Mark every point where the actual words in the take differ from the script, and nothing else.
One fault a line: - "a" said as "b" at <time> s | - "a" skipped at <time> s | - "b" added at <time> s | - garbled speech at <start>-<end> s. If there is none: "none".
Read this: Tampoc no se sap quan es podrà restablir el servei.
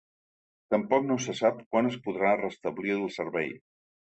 none